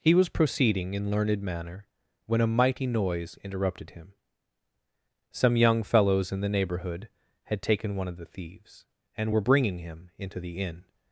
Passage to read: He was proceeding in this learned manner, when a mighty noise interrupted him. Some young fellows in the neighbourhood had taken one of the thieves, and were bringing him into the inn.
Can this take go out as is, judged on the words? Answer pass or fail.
fail